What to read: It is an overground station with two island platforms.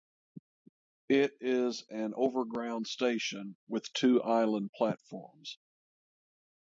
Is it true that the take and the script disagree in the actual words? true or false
false